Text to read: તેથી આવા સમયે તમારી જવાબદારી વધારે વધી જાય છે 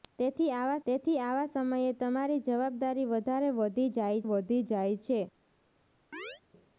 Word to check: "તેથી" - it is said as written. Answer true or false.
true